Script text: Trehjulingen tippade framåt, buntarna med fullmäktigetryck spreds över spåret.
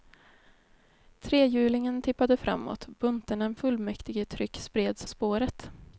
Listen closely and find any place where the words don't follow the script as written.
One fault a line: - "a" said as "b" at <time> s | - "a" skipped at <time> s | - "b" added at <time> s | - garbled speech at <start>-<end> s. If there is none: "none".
- "med" skipped at 3.5 s
- "över" skipped at 5.1 s